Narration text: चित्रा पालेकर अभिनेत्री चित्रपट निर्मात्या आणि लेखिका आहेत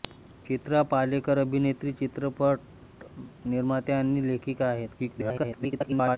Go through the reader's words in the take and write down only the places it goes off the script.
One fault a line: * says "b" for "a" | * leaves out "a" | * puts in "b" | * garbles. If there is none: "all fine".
* garbles